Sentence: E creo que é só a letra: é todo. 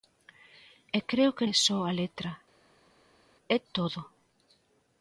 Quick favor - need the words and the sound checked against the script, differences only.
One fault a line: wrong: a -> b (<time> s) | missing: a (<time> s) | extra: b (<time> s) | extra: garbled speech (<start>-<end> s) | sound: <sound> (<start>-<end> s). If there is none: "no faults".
no faults